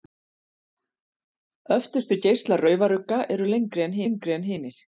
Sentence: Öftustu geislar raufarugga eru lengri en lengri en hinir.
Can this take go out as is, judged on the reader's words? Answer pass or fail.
pass